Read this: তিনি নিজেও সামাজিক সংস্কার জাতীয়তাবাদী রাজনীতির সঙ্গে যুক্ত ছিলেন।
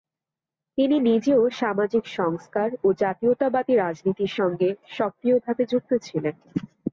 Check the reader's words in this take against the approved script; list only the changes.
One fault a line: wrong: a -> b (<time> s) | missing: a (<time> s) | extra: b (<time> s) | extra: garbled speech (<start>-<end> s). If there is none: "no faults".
extra: ও (2.8 s)
extra: সক্রিয়ভাবে (4.9 s)